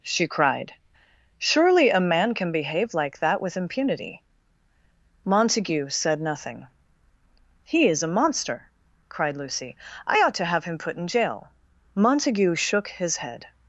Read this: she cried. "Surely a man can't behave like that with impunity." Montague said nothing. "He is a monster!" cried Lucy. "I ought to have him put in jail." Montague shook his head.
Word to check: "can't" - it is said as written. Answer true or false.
false